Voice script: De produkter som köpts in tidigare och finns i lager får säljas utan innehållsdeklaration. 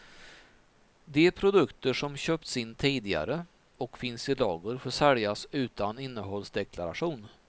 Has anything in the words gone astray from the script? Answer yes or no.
no